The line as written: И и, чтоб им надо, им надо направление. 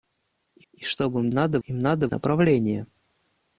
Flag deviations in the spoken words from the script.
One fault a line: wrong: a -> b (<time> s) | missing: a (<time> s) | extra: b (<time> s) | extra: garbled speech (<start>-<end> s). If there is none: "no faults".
no faults